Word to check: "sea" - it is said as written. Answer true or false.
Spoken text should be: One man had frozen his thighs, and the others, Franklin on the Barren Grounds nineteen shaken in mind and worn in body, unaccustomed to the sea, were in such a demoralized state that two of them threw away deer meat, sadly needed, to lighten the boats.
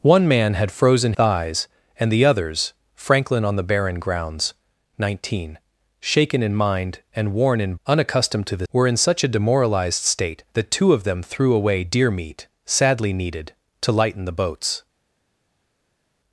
false